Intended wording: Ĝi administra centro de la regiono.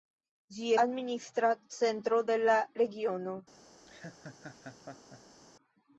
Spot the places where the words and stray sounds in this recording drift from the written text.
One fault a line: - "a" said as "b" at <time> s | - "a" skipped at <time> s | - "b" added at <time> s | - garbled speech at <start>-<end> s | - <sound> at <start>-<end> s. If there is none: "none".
- laugh at 3.9-5.4 s